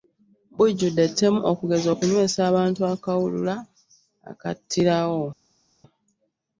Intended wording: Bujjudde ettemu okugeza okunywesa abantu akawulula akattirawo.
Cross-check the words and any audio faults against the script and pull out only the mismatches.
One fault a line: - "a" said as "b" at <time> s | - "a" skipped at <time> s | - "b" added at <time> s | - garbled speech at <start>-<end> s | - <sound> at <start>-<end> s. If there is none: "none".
none